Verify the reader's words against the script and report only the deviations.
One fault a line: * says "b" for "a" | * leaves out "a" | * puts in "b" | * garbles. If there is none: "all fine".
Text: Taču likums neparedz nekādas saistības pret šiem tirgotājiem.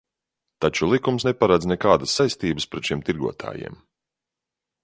all fine